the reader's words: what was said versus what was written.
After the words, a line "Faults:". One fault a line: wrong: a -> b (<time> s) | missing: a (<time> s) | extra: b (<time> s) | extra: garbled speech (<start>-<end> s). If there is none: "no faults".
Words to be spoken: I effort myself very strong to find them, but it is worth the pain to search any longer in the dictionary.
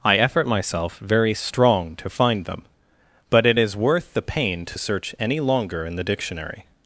I effort myself very strong to find them, but it is worth the pain to search any longer in the dictionary.
Faults:
no faults